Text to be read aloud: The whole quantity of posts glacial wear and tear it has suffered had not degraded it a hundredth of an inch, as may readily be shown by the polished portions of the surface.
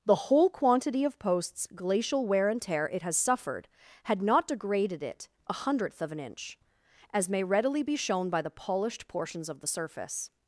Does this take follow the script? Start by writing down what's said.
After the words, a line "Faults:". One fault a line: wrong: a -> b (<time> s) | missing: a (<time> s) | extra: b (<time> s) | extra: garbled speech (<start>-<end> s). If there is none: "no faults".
The whole quantity of posts glacial wear and tear it has suffered had not degraded it a hundredth of an inch, as may readily be shown by the polished portions of the surface.
Faults:
no faults